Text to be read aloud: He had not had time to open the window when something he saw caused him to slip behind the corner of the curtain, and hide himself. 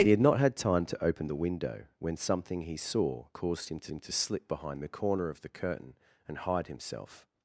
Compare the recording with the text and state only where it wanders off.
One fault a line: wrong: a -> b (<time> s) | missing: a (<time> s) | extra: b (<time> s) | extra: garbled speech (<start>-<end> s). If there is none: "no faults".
extra: him to (3.9 s)